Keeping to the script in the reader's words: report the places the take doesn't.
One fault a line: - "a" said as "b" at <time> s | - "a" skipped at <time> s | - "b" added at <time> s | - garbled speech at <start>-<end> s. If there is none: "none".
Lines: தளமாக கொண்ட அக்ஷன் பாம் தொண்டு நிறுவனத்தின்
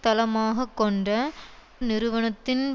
- "அக்ஷன் பாம் தொண்டு" skipped at 1.1 s